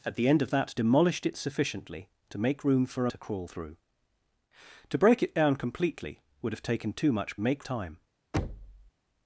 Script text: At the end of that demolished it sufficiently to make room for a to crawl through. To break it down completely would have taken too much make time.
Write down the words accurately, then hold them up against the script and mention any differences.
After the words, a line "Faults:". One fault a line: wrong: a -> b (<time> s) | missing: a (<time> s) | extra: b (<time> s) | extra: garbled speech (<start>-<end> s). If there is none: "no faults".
At the end of that demolished it sufficiently to make room for a to crawl through. To break it down completely would have taken too much make time.
Faults:
no faults